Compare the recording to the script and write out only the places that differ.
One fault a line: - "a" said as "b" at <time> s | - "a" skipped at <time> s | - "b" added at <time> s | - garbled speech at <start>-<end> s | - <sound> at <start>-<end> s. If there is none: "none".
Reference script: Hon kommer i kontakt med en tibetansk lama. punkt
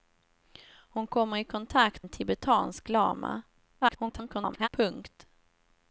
- "med" skipped at 2.1 s
- garbled speech at 3.8-4.7 s